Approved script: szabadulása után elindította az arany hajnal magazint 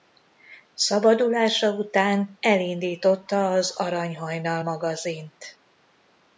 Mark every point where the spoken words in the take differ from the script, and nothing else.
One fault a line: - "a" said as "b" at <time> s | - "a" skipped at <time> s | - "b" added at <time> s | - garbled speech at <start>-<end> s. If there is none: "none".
none